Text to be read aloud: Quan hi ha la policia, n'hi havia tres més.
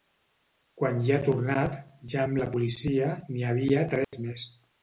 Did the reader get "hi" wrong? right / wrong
right